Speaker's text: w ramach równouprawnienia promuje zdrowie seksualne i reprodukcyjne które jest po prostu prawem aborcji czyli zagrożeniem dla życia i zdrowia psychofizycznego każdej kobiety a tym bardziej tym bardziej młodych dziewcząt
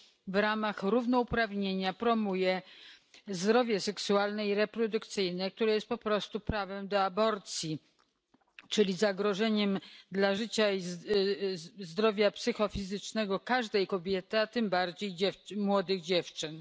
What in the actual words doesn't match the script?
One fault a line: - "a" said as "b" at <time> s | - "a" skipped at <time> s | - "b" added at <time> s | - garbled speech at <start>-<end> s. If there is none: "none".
- "do" added at 6.9 s
- "tym bardziej" skipped at 15.2 s